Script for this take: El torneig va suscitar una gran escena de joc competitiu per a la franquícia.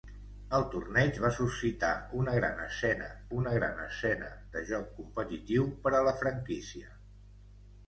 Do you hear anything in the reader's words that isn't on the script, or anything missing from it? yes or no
yes